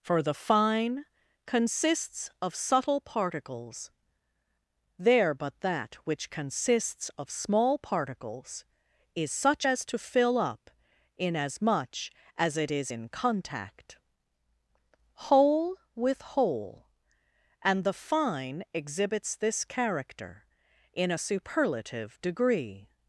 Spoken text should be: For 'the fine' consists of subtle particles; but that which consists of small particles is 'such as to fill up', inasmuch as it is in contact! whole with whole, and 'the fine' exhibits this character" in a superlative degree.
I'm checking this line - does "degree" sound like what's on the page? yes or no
yes